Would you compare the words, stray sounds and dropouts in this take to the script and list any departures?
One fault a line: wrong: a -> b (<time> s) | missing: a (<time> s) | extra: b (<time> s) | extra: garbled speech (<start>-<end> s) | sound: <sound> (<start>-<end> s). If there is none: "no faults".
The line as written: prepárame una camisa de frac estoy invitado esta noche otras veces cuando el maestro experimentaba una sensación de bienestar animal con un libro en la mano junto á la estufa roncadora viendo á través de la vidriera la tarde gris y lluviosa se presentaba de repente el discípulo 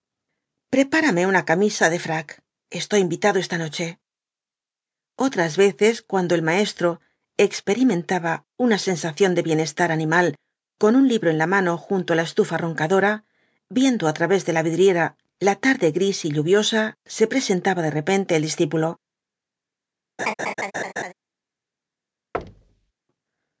sound: laugh (20.2-21.1 s)
sound: thud (22.3-22.9 s)